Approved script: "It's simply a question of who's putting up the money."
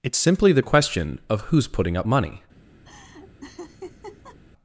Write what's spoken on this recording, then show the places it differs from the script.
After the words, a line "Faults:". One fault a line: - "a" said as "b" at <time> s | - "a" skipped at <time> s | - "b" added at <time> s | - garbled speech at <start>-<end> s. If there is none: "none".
"It's simply the question of who's putting up money."
Faults:
- "a" said as "the" at 0.5 s
- "the" skipped at 2.1 s